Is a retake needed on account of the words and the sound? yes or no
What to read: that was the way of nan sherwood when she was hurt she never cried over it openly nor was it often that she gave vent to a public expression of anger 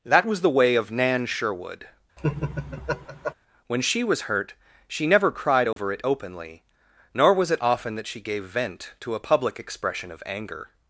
yes